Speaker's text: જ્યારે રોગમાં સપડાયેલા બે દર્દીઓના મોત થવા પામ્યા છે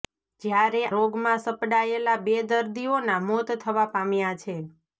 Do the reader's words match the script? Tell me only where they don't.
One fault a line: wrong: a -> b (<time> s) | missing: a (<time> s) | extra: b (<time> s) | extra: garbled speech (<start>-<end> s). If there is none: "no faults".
no faults